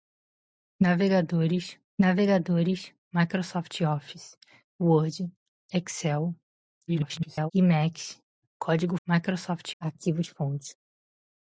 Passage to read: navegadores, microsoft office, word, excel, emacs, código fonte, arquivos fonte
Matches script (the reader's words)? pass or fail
fail